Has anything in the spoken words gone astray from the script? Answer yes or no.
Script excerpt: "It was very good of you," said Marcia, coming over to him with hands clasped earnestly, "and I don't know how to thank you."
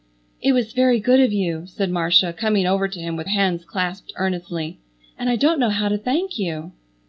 no